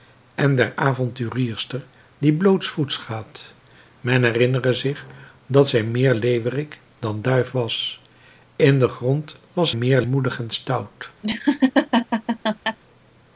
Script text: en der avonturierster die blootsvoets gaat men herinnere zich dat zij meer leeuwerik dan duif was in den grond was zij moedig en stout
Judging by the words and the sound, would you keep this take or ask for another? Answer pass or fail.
fail